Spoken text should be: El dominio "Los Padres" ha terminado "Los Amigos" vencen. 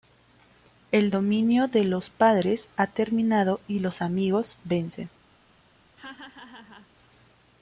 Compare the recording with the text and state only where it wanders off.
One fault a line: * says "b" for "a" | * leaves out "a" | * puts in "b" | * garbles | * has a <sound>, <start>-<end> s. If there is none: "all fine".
* puts in "de"
* puts in "y"
* has a laugh, 6.0-6.9 s